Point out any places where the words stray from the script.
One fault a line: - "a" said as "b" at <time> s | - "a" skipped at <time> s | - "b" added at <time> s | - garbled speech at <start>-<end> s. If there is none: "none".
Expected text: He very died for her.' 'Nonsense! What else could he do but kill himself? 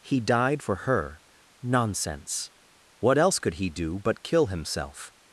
- "very" skipped at 0.2 s